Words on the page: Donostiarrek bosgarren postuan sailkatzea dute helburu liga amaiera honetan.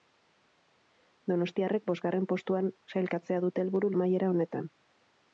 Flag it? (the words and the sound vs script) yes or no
yes